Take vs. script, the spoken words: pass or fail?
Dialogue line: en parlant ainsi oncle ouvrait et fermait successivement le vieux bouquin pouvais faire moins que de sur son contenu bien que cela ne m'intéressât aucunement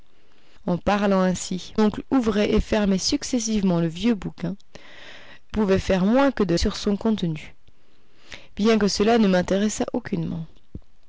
pass